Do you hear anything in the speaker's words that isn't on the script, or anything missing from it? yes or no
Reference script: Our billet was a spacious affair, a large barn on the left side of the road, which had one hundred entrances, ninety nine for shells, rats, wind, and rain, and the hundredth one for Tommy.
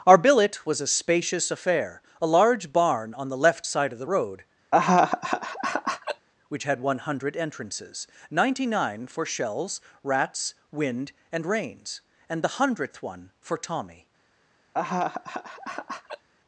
yes